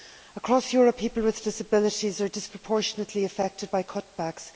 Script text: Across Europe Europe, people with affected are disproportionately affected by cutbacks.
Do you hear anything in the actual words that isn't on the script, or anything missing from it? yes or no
yes